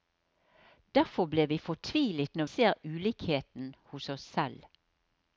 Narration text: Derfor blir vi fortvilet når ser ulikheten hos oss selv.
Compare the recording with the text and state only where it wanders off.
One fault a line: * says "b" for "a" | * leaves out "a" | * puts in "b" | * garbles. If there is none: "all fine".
all fine